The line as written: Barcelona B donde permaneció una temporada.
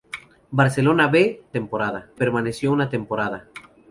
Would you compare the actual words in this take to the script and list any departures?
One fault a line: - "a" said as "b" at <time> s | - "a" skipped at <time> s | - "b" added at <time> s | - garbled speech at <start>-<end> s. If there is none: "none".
- "donde" said as "temporada" at 1.5 s